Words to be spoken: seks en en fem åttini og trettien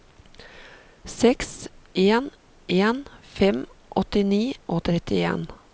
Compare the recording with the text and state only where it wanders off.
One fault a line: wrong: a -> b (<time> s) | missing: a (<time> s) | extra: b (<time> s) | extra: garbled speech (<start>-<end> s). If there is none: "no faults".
no faults